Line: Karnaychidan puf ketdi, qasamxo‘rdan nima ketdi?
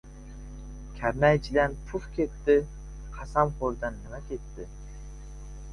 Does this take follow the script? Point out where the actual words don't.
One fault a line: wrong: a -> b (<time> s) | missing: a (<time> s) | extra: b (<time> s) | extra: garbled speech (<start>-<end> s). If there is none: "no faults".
no faults